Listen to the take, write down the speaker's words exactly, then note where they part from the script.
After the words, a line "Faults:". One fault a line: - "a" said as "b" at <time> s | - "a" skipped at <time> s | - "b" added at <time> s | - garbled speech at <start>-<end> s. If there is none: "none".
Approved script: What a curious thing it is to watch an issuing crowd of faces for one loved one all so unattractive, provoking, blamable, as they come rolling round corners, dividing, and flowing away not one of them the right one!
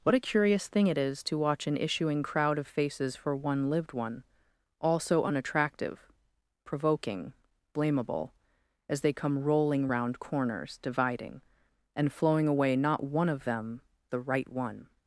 What a curious thing it is to watch an issuing crowd of faces for one lived one all so unattractive, provoking, blamable, as they come rolling round corners, dividing, and flowing away not one of them the right one!
Faults:
- "loved" said as "lived" at 3.7 s